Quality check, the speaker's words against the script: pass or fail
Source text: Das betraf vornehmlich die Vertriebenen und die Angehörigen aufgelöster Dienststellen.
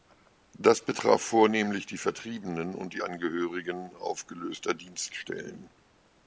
pass